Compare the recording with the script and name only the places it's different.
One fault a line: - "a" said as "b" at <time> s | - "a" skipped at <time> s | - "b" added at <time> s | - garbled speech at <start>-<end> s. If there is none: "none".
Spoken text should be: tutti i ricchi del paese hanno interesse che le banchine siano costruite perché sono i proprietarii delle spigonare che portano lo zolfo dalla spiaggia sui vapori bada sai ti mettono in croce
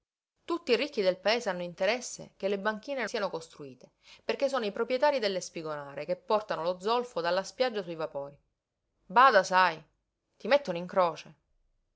none